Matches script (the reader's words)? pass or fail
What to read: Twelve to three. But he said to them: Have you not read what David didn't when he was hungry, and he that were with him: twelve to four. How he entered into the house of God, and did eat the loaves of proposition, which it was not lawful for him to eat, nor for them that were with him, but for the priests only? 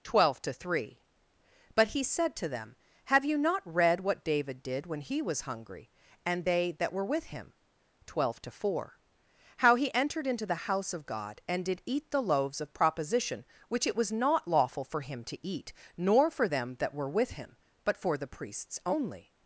fail